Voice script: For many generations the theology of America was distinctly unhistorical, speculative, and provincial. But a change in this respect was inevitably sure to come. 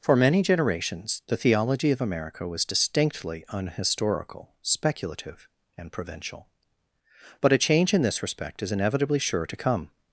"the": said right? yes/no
yes